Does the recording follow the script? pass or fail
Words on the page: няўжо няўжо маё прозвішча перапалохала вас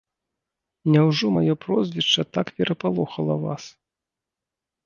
fail